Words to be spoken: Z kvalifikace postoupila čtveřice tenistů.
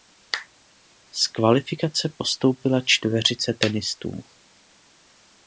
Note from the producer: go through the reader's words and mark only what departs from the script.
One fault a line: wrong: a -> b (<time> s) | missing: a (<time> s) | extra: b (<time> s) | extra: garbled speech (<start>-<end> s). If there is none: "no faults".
no faults